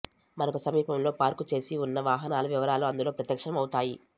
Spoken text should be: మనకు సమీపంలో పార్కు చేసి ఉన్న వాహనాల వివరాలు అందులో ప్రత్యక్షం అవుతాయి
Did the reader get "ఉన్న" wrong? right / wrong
right